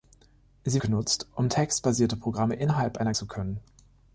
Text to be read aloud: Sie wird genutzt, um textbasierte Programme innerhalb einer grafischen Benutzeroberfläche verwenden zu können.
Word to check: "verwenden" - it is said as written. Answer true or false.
false